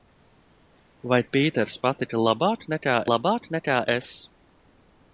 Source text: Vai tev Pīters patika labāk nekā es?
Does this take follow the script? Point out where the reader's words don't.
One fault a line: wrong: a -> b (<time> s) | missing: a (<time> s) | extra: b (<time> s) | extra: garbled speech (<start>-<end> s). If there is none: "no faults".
missing: tev (1.2 s)
extra: labāk nekā (3.1 s)